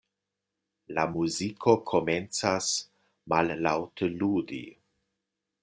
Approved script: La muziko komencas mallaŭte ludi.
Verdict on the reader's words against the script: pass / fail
pass